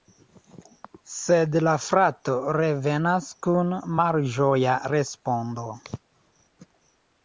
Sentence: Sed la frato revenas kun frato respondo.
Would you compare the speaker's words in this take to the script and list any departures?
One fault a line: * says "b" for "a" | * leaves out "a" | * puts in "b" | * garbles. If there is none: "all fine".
* says "malĝoja" for "frato"